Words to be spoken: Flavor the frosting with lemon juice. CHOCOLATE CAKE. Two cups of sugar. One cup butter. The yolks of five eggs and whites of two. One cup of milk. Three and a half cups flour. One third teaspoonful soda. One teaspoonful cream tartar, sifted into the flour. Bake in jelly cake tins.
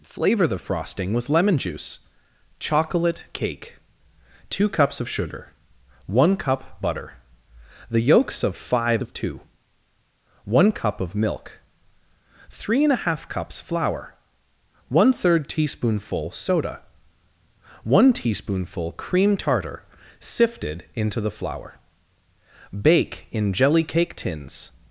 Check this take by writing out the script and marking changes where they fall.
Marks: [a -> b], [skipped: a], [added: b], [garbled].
Flavor the frosting with lemon juice. CHOCOLATE CAKE. Two cups of sugar. One cup butter. The yolks of five [skipped: eggs and whites] of two. One cup of milk. Three and a half cups flour. One third teaspoonful soda. One teaspoonful cream tartar, sifted into the flour. Bake in jelly cake tins.